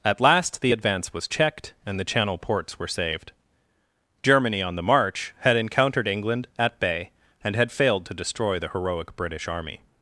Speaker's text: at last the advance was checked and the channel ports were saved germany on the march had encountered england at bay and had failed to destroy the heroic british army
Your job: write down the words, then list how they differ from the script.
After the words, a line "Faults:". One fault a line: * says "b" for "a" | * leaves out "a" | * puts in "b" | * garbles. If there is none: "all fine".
at last the advance was checked and the channel ports were saved germany on the march had encountered england at bay and had failed to destroy the heroic british army
Faults:
all fine